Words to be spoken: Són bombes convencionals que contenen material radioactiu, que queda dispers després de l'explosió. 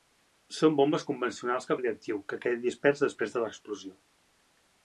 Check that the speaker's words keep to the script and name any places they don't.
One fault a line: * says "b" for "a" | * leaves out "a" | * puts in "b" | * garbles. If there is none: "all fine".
* leaves out "contenen material"